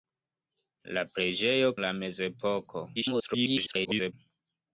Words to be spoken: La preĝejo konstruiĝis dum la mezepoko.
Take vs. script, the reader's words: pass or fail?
fail